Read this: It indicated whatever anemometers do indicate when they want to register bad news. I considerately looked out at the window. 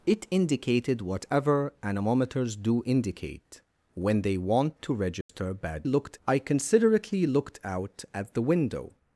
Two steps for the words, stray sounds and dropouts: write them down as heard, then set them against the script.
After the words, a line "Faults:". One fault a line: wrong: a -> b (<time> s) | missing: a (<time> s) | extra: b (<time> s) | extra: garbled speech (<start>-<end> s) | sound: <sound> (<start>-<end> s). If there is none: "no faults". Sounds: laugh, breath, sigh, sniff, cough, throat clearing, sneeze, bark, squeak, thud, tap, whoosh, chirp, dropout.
It indicated whatever anemometers do indicate when they want to register bad looked. I considerately looked out at the window.
Faults:
sound: dropout (5.2-5.3 s)
wrong: news -> looked (5.9 s)